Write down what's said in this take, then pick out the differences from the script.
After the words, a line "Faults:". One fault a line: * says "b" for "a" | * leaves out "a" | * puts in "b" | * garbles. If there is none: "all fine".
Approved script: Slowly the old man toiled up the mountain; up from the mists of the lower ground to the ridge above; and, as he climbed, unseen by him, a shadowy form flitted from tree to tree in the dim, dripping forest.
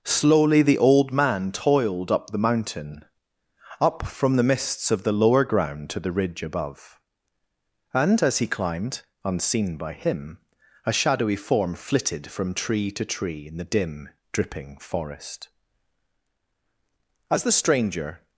Slowly the old man toiled up the mountain; up from the mists of the lower ground to the ridge above; and, as he climbed, unseen by him, a shadowy form flitted from tree to tree in the dim, dripping forest. As the stranger
Faults:
* puts in "As the stranger"